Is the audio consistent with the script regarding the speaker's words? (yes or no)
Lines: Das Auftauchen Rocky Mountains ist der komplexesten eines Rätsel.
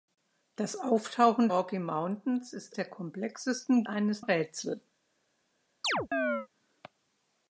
yes